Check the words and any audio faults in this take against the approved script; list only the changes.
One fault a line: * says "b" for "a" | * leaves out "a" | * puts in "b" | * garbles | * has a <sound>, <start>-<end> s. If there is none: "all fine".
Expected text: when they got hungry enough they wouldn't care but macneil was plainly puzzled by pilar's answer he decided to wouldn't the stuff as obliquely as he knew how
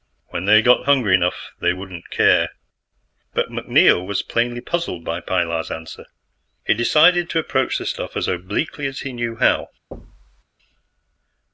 * says "approach" for "wouldn't"
* has a thud, 9.9-10.4 s